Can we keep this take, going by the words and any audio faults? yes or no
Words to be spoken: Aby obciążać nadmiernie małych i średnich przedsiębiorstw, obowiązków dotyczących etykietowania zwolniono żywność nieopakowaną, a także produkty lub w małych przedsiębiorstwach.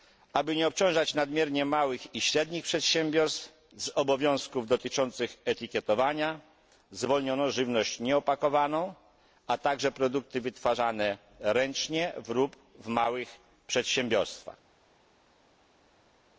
no